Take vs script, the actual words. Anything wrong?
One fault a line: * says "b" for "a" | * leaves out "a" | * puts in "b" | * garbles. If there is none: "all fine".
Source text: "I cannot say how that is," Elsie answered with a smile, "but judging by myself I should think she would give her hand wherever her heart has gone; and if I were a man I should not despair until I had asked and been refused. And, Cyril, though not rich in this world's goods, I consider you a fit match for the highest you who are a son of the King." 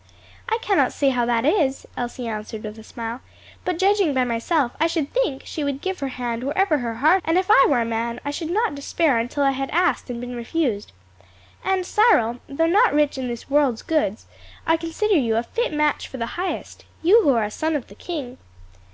* leaves out "has gone"